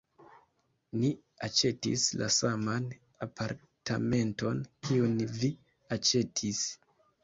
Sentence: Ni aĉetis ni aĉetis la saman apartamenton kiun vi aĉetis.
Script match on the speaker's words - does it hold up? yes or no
no